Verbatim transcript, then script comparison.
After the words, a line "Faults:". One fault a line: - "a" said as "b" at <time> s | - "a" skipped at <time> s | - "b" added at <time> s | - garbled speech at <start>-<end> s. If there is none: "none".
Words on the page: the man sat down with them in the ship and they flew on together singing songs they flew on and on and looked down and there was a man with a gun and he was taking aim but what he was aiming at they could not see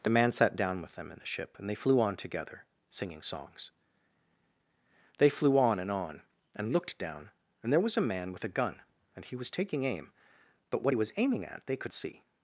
the man sat down with them in the ship and they flew on together singing songs they flew on and on and looked down and there was a man with a gun and he was taking aim but what he was aiming at they could see
Faults:
- "not" skipped at 11.9 s